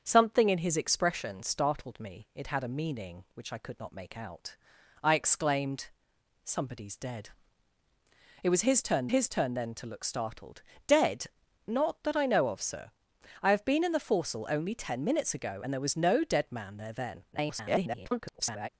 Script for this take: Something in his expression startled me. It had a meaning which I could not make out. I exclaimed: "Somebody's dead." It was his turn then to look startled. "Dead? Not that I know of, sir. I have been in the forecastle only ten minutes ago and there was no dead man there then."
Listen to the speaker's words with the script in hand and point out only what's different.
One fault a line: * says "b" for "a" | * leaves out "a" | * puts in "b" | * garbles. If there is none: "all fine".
* puts in "his turn"
* garbles